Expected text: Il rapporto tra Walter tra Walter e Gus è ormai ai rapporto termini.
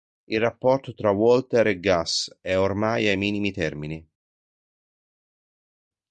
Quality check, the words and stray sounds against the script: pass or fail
fail